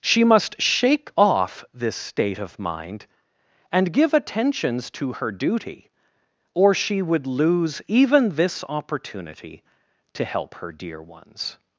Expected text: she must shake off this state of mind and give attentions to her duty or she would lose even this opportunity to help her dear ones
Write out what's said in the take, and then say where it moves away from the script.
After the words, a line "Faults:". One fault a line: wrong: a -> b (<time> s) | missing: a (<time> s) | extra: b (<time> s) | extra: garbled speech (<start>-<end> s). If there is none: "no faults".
she must shake off this state of mind and give attentions to her duty or she would lose even this opportunity to help her dear ones
Faults:
no faults